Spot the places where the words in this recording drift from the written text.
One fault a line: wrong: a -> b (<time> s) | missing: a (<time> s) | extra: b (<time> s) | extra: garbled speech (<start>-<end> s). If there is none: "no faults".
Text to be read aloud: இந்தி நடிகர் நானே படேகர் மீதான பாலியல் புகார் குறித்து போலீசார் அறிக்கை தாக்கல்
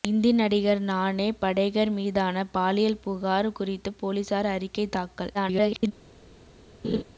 extra: garbled speech (5.3-5.9 s)